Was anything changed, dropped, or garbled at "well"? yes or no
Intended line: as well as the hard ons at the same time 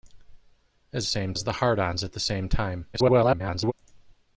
yes